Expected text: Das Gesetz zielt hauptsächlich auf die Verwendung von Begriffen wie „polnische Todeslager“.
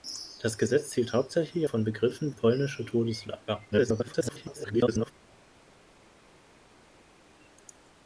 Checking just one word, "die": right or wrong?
wrong